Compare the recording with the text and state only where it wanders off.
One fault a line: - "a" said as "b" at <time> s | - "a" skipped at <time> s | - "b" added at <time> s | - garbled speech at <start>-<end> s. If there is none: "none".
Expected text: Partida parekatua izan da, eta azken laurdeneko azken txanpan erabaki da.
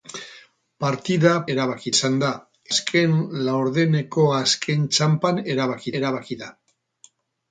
- "parekatua" said as "erabaki" at 1.6 s
- "eta" skipped at 2.3 s
- "erabaki" added at 6.0 s